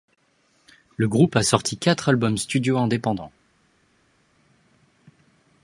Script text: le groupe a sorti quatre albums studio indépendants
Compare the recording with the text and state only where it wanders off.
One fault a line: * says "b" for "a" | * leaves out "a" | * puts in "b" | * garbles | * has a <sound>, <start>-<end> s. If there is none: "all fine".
all fine